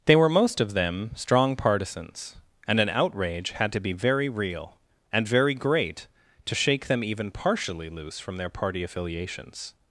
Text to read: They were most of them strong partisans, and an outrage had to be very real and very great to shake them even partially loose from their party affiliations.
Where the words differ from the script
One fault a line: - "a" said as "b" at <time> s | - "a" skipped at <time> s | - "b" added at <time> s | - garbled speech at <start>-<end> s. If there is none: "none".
none